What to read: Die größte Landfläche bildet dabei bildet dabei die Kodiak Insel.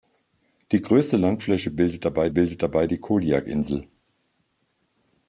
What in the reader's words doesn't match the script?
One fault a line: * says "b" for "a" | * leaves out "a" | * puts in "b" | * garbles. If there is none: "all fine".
all fine